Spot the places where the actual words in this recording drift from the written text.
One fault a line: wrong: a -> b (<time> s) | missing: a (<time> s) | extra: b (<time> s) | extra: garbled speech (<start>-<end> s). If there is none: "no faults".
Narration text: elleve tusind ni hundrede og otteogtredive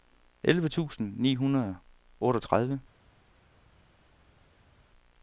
no faults